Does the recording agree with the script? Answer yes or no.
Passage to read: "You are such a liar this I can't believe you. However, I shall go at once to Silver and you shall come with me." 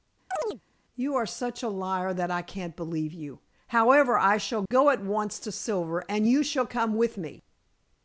no